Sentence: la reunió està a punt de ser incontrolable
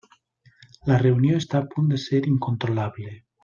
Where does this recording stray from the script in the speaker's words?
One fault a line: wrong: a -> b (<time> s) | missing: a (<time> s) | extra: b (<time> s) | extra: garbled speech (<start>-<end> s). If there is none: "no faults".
no faults